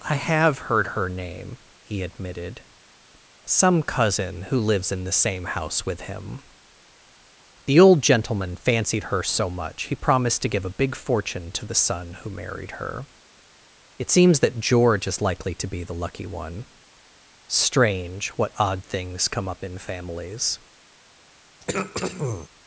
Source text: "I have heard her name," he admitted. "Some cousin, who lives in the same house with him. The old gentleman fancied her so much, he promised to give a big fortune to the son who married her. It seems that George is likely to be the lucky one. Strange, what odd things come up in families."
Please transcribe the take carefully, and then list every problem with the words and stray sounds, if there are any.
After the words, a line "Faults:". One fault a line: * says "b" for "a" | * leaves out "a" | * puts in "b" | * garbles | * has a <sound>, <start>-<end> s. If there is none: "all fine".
"I have heard her name," he admitted. "Some cousin, who lives in the same house with him. The old gentleman fancied her so much, he promised to give a big fortune to the son who married her. It seems that George is likely to be the lucky one. Strange, what odd things come up in families."
Faults:
* has a throat clearing, 21.6-22.5 s